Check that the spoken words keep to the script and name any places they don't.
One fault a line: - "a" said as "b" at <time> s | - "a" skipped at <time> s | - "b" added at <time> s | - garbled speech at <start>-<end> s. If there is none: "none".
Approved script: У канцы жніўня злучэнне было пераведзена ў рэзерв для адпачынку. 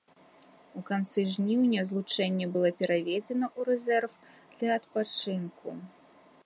none